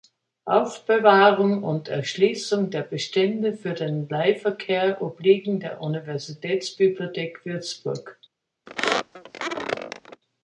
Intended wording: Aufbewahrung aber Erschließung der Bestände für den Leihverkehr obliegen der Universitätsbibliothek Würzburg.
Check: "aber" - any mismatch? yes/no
yes